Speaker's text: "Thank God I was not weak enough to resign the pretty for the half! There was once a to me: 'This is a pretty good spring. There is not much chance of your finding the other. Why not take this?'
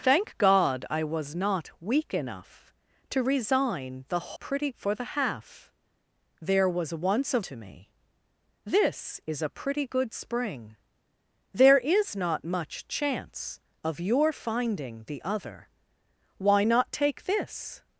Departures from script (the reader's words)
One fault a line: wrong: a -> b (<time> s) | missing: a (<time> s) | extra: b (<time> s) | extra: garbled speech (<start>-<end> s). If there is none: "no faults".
no faults